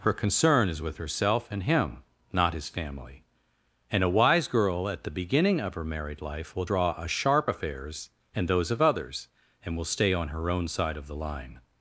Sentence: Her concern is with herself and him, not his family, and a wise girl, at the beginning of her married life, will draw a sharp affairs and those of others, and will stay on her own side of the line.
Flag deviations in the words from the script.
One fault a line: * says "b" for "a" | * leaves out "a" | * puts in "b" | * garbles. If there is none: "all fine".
all fine